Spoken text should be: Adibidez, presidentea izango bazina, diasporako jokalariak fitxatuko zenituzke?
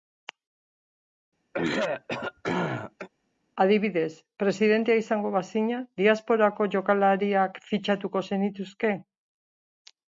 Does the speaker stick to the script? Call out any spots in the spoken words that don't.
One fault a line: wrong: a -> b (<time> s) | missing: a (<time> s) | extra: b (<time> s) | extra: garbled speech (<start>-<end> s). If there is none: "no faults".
no faults